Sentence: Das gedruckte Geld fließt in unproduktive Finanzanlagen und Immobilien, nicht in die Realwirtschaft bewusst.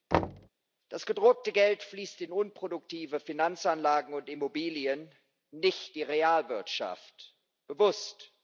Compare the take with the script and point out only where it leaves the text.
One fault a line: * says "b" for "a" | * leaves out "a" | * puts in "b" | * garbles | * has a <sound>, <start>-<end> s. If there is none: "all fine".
* has a thud, 0.1-0.5 s